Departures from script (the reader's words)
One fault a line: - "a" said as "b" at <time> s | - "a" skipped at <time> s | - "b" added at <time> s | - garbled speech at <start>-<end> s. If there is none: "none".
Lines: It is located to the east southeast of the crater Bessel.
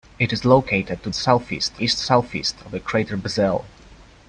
- "the" said as "southeast" at 1.1 s